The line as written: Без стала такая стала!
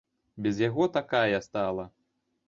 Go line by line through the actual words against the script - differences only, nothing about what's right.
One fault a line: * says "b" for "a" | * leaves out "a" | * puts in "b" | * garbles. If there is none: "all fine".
* says "яго" for "стала"